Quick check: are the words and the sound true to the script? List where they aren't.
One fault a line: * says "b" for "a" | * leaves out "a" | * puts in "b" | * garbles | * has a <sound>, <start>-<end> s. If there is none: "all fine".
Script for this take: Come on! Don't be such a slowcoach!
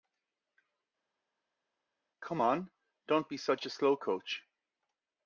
all fine